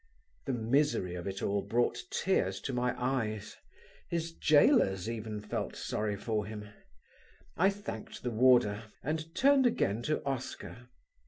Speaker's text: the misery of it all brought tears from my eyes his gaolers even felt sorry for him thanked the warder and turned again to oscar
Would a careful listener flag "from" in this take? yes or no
yes